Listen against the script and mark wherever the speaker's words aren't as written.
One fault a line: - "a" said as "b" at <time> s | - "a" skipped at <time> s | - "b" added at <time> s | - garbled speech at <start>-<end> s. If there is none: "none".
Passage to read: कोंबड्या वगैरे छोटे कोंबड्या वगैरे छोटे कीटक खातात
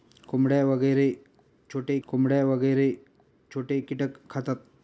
none